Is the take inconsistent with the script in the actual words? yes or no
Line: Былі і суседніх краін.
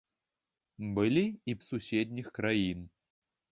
no